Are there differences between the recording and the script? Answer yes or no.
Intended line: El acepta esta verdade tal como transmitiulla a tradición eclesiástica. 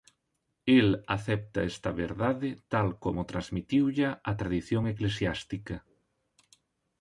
no